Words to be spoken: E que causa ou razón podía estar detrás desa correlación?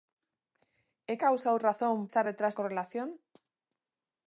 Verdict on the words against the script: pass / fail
fail